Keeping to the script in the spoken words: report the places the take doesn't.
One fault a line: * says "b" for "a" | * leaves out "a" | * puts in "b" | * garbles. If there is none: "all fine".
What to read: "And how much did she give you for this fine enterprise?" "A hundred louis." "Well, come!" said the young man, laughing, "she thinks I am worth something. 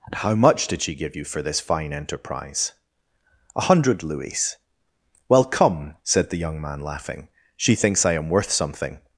all fine